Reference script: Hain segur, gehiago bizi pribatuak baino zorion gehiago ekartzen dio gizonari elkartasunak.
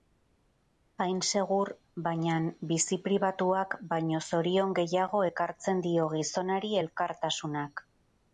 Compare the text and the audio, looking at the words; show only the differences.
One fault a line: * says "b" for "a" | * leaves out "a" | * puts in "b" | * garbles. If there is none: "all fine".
* says "bainan" for "gehiago"